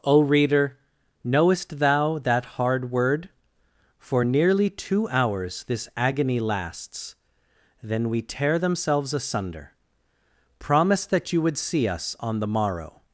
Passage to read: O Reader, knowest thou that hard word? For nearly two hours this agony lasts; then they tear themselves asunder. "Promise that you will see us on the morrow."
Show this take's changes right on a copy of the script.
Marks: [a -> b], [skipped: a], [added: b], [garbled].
O Reader, knowest thou that hard word? For nearly two hours this agony lasts; then [they -> we] tear themselves asunder. "Promise that you [will -> would] see us on the morrow."